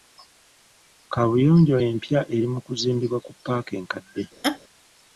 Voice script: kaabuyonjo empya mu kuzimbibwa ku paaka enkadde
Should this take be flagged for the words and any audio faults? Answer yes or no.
yes